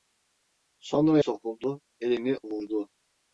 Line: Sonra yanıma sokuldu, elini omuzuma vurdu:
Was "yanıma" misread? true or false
true